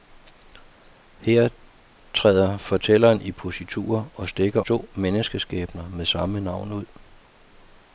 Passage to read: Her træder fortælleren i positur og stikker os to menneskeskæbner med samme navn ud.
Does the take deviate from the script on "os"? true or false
true